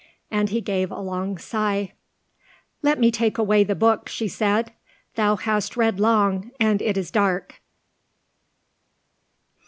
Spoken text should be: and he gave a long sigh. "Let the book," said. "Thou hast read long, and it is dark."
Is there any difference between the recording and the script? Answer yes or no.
yes